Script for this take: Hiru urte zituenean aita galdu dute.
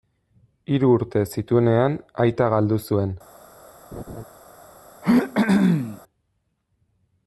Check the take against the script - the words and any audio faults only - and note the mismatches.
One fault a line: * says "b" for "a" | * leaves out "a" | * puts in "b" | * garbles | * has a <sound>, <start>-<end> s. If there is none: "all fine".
* says "zuen" for "dute"
* has a laugh, 3.9-4.2 s
* has a throat clearing, 5.0-6.0 s